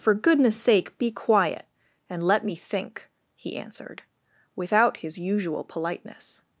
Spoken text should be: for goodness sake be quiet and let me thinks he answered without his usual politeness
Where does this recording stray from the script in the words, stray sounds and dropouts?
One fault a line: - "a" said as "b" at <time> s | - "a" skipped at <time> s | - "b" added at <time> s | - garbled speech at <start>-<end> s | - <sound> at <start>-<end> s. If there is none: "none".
- "thinks" said as "think" at 2.5 s